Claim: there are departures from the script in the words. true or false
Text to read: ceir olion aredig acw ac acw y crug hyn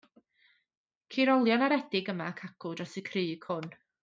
true